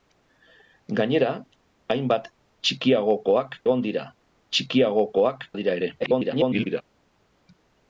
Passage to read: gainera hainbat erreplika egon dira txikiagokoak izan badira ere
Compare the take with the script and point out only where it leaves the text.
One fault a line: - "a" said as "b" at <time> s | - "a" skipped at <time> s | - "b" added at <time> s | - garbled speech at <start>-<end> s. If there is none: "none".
- "erreplika" said as "txikiagokoak" at 2.7 s
- "izan" skipped at 5.5 s
- garbled speech at 6.0-6.8 s